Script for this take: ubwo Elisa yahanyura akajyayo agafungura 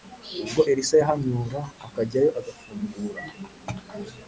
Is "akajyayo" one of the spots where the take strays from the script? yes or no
no